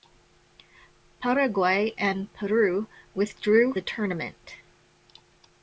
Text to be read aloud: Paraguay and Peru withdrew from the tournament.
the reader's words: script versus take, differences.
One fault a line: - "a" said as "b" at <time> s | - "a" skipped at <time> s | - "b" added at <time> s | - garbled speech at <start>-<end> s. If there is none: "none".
- "from" skipped at 3.8 s